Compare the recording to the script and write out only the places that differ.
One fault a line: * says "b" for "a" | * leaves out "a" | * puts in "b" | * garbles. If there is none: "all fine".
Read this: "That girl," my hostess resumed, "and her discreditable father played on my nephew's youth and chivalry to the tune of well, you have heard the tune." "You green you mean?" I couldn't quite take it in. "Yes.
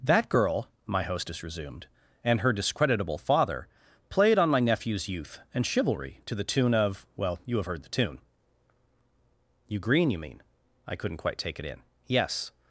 all fine